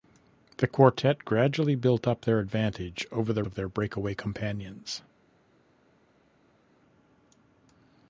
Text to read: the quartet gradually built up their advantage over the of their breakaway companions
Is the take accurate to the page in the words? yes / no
yes